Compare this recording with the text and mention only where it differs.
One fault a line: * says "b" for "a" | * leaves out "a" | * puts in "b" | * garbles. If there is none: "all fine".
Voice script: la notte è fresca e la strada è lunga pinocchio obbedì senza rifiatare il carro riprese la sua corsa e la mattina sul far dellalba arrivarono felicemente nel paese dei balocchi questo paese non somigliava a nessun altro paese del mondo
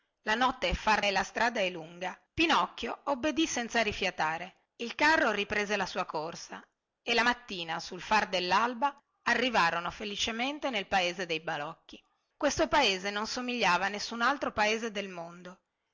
* says "far" for "fresca"